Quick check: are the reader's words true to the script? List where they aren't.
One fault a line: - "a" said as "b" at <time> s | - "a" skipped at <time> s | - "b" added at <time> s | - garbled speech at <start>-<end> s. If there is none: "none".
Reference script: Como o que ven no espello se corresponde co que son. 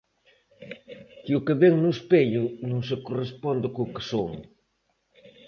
- "Como" said as "Que" at 1.2 s
- "non" added at 2.7 s